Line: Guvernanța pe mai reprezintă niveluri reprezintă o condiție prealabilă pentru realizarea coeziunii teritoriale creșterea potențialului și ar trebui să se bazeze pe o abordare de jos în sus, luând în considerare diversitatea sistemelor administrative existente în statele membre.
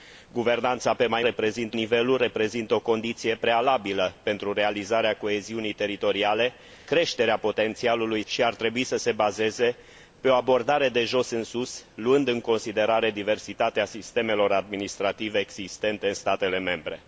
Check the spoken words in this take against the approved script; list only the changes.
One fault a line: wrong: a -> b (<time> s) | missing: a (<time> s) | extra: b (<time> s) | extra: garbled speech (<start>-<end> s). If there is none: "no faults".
no faults